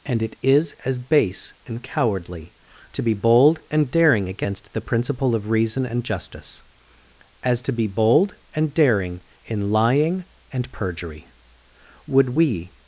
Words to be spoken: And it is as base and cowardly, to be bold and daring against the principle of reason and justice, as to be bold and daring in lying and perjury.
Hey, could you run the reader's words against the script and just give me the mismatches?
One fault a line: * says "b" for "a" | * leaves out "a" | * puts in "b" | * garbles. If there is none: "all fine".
* puts in "Would we"